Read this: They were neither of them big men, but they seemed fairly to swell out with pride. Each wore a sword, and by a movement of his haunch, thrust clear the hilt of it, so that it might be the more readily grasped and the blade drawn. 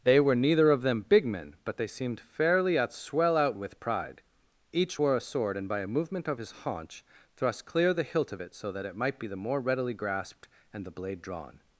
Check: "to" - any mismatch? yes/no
yes